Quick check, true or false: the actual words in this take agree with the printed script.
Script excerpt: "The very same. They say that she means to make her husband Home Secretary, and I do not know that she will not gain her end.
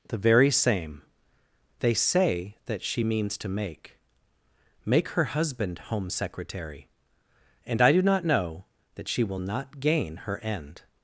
false